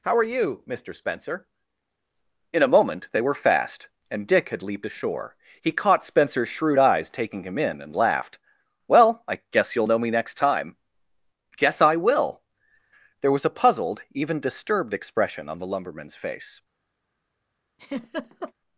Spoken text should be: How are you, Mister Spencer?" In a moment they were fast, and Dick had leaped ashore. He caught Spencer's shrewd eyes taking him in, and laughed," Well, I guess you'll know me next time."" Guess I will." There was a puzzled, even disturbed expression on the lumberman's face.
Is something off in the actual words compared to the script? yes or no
no